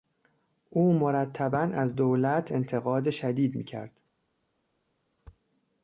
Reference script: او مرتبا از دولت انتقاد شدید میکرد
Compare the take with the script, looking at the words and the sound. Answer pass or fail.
pass